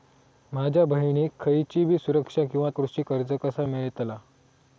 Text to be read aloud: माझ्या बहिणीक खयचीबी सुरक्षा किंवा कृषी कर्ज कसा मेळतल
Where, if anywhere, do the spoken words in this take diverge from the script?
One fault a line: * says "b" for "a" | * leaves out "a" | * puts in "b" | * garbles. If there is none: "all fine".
all fine